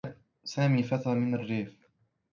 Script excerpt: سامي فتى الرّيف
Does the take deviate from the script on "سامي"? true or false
false